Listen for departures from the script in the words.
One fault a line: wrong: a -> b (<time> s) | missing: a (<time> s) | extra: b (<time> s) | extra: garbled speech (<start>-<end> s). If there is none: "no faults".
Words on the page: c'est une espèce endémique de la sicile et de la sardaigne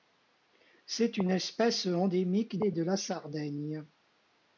missing: de la sicile (2.6 s)